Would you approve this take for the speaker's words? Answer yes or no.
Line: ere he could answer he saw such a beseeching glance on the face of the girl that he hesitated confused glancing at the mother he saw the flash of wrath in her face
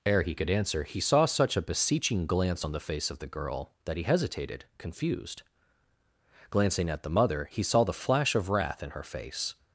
yes